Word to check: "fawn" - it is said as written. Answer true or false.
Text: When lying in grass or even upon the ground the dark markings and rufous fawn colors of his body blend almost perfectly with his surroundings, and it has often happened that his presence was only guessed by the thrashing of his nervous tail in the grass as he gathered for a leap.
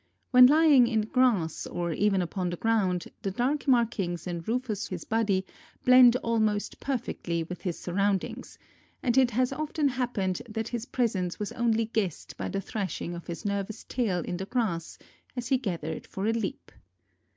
false